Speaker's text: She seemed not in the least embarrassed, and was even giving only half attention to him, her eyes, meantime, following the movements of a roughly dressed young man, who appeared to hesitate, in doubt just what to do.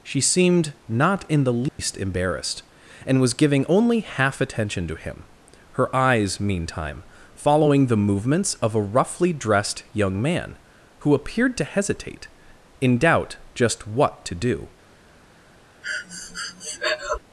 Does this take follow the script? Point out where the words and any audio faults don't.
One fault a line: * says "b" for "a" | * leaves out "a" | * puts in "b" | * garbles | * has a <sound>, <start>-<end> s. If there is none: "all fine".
* has a dropout, 1.7-1.8 s
* leaves out "even"
* has a breath, 15.8-17.2 s